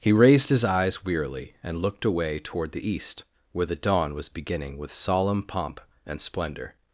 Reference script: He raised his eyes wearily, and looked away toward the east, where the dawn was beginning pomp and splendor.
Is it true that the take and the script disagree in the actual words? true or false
true